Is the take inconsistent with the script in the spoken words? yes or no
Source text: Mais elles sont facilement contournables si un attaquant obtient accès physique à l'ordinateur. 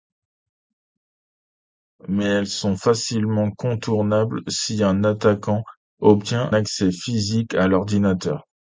no